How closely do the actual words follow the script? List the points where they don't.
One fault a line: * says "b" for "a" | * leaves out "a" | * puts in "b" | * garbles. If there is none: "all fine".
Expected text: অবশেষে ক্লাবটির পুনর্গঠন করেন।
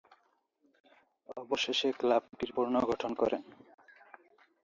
all fine